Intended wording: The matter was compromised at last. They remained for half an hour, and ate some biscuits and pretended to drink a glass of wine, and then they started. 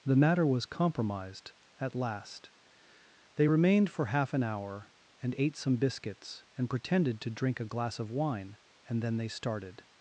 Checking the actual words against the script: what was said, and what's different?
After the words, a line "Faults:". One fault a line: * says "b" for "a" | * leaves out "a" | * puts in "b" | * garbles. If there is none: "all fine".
The matter was compromised at last. They remained for half an hour, and ate some biscuits and pretended to drink a glass of wine, and then they started.
Faults:
all fine